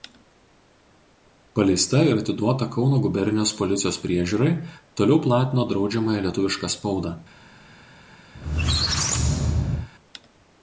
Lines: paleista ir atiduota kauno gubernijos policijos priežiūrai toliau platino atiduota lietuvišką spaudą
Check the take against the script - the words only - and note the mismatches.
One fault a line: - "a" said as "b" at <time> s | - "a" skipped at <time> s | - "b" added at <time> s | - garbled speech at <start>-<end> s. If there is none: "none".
- "atiduota" said as "draudžiamąją" at 5.8 s